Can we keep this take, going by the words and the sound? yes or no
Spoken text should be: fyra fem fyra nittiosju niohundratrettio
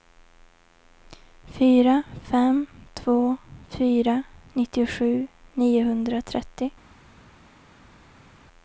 no